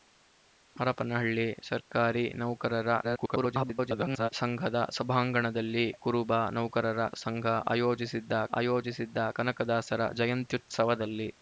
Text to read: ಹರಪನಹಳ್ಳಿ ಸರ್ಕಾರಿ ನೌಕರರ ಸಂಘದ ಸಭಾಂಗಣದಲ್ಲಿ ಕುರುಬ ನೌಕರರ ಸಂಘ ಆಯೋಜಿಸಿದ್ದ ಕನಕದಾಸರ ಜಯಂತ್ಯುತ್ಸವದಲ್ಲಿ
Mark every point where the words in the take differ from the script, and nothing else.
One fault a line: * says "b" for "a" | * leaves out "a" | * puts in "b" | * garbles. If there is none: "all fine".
* garbles
* puts in "ಆಯೋಜಿಸಿದ್ದ"